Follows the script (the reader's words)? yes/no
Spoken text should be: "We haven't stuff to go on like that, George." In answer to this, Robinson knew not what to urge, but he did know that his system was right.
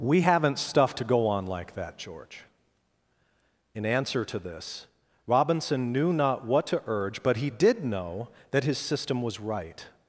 yes